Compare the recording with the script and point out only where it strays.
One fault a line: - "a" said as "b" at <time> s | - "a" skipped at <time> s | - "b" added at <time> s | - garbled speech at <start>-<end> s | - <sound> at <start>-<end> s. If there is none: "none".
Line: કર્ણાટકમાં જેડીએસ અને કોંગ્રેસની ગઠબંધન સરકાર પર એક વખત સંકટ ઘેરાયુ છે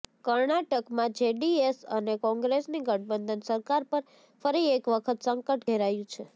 - "ફરી" added at 4.4 s